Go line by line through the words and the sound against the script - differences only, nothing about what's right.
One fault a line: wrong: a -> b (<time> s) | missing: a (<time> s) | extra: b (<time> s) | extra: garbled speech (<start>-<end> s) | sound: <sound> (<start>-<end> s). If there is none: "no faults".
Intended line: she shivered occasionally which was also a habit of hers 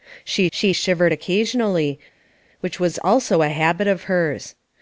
extra: she (0.5 s)